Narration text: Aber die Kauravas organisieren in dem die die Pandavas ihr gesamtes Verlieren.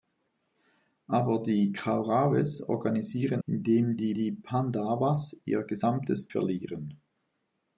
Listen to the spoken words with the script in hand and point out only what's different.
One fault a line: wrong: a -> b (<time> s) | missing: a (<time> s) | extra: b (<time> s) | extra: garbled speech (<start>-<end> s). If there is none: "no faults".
no faults